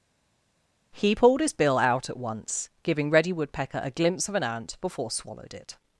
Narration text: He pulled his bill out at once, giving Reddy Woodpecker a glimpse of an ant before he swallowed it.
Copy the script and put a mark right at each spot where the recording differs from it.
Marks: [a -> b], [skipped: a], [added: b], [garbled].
He pulled his bill out at once, giving Reddy Woodpecker a glimpse of an ant before [skipped: he] swallowed it.